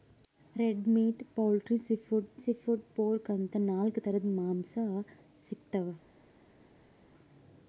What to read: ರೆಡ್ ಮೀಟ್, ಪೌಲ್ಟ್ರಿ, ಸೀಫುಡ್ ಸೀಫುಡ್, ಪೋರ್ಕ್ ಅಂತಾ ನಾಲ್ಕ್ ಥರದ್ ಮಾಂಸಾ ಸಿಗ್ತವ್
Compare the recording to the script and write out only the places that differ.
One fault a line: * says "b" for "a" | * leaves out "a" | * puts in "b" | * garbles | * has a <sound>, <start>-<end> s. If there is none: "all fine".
all fine